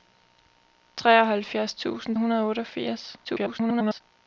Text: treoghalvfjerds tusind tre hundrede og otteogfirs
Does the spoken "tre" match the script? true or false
false